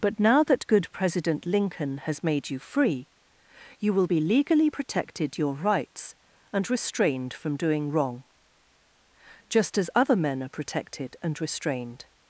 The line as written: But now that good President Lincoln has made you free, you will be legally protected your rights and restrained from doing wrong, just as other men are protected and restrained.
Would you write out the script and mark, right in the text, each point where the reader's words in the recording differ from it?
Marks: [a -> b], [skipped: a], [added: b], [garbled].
But now that good President Lincoln has made you free, you will be legally protected your rights and restrained from doing wrong, just as other men are protected and restrained.